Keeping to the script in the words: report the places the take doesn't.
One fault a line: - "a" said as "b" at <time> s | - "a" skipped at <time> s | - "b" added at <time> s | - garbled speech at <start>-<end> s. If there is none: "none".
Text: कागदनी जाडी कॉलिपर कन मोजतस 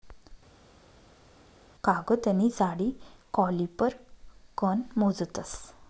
none